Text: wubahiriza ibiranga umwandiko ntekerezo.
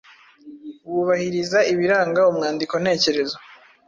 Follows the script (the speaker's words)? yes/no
yes